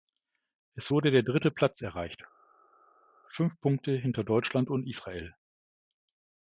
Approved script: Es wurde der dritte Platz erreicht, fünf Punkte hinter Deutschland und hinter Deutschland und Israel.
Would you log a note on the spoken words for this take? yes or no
yes